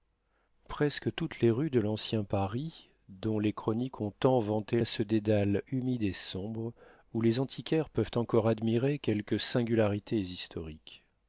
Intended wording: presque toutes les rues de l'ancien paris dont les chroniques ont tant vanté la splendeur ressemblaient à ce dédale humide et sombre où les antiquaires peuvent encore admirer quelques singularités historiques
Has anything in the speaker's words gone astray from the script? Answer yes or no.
yes